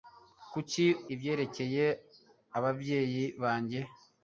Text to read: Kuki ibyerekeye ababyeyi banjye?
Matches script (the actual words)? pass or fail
pass